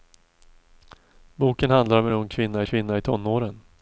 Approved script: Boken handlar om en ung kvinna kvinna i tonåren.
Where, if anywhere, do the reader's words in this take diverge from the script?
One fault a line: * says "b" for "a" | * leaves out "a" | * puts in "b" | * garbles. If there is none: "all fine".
all fine